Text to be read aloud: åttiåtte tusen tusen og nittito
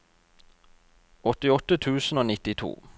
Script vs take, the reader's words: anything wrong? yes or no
yes